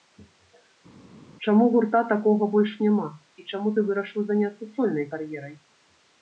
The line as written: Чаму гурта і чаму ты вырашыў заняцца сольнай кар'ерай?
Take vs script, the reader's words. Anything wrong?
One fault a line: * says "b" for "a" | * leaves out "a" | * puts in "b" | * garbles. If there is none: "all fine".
* puts in "такога больш няма"